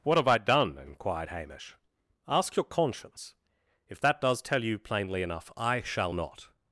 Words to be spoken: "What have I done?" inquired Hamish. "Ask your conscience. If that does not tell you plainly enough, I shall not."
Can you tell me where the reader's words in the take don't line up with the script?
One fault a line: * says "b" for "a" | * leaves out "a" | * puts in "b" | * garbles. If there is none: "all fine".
* leaves out "not"